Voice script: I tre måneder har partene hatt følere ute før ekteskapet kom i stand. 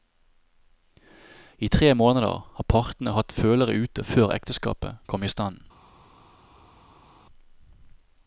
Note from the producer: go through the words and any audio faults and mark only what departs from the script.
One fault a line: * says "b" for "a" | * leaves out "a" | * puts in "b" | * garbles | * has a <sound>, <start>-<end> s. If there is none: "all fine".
all fine